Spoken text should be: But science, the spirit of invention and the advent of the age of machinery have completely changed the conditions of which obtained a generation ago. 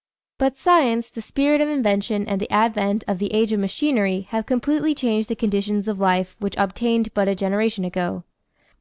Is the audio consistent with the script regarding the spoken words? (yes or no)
no